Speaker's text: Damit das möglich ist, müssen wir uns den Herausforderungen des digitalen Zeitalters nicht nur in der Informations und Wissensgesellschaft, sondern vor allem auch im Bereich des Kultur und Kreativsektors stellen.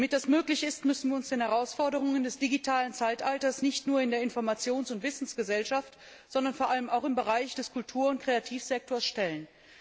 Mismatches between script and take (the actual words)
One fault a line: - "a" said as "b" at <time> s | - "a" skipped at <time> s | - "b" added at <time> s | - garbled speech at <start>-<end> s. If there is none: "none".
none